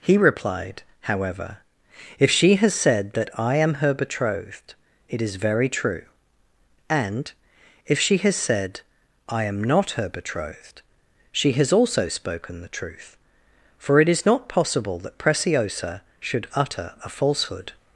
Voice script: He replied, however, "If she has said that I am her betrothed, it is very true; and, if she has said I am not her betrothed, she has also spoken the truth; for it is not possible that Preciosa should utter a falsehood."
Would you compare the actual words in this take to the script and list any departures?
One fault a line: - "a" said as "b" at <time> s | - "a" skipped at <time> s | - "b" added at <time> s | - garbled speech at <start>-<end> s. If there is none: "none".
none